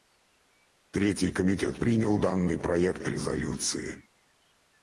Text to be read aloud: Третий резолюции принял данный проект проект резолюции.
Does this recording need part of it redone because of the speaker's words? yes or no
yes